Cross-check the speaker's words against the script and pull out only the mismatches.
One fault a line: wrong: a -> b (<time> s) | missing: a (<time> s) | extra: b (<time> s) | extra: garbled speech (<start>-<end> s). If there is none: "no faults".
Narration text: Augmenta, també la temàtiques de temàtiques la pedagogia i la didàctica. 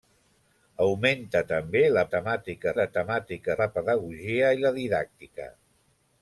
no faults